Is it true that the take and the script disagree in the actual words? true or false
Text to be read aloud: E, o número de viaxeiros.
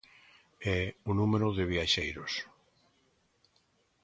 false